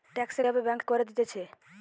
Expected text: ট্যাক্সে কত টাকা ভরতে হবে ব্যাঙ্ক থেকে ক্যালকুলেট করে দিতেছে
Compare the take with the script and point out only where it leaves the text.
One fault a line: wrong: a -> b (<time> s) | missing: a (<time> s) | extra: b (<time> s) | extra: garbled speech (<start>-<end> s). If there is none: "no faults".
missing: কত টাকা ভরতে (0.4 s)
missing: থেকে ক্যালকুলেট (0.8 s)